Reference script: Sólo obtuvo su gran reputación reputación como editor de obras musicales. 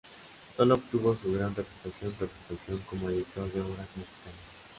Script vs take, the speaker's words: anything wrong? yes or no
no